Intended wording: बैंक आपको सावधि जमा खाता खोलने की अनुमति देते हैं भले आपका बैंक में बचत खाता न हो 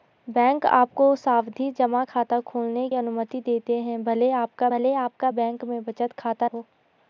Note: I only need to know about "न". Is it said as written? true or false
false